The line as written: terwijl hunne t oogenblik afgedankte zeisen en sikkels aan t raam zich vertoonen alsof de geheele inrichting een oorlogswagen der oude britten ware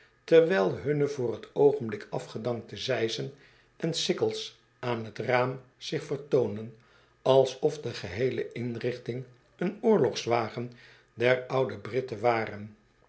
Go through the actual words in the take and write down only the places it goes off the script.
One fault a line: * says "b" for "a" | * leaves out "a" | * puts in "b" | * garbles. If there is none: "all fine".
* puts in "voor"